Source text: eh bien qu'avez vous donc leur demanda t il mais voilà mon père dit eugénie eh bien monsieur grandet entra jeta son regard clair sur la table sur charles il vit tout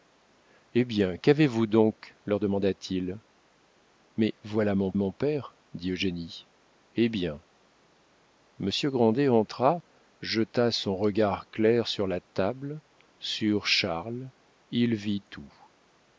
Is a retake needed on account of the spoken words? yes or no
yes